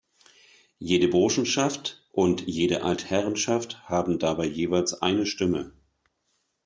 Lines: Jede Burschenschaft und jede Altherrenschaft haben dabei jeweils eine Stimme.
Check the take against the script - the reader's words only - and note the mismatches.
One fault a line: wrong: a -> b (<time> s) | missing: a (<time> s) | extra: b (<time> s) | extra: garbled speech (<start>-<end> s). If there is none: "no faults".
no faults